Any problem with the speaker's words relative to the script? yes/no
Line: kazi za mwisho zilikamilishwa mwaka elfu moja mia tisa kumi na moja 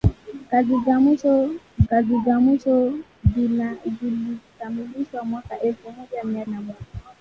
yes